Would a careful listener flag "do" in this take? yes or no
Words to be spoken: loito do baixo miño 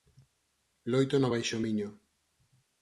yes